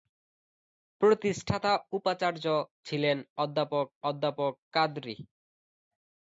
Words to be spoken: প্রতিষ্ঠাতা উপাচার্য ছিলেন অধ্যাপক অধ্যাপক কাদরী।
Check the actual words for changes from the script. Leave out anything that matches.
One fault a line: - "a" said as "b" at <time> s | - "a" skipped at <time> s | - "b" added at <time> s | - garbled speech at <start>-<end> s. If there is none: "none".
none